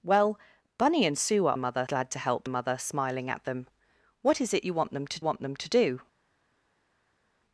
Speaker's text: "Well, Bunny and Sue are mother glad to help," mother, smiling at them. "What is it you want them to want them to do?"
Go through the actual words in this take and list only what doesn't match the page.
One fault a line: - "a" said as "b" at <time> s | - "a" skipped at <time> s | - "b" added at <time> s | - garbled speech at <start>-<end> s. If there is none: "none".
none